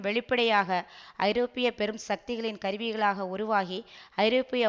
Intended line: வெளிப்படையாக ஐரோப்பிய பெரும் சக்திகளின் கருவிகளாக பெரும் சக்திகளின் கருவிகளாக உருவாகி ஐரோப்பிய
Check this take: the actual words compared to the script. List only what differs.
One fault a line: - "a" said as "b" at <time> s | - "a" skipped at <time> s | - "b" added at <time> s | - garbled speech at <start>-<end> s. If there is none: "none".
- "பெரும் சக்திகளின் கருவிகளாக" skipped at 3.3 s